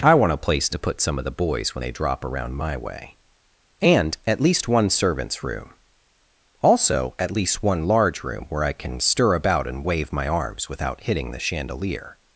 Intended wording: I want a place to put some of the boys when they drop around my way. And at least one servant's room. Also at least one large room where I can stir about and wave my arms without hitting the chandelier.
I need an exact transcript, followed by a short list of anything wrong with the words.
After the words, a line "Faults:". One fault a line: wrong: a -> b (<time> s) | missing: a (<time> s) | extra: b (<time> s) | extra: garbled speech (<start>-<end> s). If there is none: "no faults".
I want a place to put some of the boys when they drop around my way. And at least one servant's room. Also at least one large room where I can stir about and wave my arms without hitting the chandelier.
Faults:
no faults